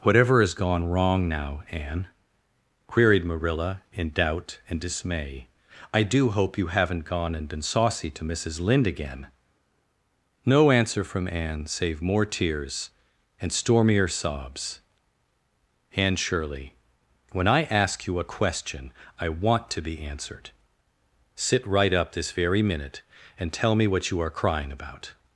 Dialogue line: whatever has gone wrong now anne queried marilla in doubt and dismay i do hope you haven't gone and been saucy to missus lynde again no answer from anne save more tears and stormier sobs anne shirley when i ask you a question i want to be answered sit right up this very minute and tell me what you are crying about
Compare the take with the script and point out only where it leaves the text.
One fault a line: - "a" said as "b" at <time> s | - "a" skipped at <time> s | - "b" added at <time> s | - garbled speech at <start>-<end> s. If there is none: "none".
none